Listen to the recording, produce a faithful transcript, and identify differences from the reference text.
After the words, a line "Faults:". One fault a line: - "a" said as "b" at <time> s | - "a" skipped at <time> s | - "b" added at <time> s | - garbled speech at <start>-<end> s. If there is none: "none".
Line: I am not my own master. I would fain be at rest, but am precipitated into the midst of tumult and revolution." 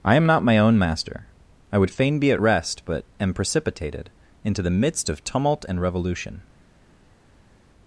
I am not my own master. I would fain be at rest, but am precipitated into the midst of tumult and revolution."
Faults:
none